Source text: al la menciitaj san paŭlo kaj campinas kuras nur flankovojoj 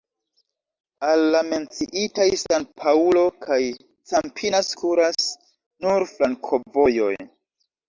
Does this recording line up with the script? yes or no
yes